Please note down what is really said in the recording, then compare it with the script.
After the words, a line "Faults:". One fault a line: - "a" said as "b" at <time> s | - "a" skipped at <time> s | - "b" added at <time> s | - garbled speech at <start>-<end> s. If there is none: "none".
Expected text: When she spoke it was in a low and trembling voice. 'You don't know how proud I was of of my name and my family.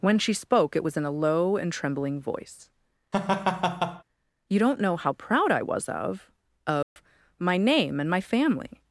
When she spoke it was in a low and trembling voice. 'You don't know how proud I was of of my name and my family.
Faults:
none